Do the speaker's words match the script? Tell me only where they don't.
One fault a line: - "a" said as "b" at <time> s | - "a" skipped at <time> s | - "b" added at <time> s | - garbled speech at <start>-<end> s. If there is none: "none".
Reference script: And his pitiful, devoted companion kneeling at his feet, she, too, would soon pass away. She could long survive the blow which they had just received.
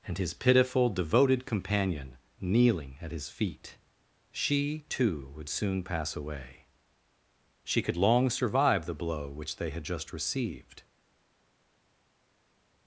none